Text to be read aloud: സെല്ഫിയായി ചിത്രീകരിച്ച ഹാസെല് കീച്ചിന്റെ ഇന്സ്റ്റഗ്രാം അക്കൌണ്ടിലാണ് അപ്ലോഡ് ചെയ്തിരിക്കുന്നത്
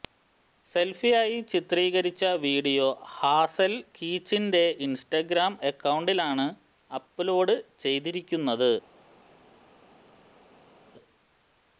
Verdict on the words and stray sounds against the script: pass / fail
fail